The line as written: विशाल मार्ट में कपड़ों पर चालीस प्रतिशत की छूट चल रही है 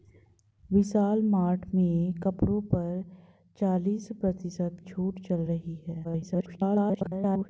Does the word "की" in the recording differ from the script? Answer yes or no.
yes